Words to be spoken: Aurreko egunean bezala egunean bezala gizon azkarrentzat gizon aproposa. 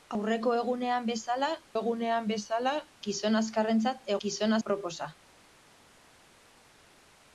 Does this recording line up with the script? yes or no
yes